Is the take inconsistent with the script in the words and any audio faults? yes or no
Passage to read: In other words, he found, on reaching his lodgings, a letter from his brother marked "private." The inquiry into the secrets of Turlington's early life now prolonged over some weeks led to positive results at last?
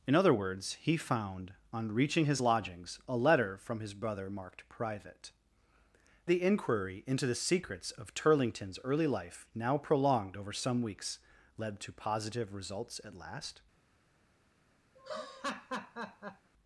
yes